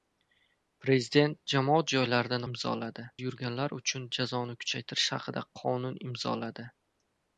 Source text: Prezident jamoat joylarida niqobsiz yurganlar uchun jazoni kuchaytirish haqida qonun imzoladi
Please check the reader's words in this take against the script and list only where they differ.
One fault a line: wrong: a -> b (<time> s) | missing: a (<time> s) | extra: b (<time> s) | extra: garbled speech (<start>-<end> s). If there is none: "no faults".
wrong: niqobsiz -> imzoladi (2.5 s)